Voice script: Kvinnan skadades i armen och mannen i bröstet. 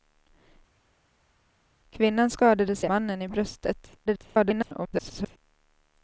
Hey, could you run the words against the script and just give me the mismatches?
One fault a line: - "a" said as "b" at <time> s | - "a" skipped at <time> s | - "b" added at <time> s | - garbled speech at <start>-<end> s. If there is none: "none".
- "armen och" skipped at 2.9 s
- garbled speech at 4.1-5.4 s